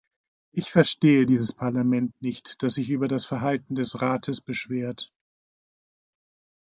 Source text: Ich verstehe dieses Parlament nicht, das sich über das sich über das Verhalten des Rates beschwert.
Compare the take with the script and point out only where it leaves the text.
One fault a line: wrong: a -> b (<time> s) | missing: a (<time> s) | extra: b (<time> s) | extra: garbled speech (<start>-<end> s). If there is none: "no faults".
missing: sich über das (3.3 s)